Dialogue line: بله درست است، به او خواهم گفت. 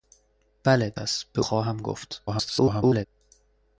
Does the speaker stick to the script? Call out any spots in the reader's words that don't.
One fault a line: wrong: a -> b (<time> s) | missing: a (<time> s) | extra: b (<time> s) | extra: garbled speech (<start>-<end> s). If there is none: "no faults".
missing: درست (0.9 s)
missing: او (1.4 s)
extra: garbled speech (2.3-3.1 s)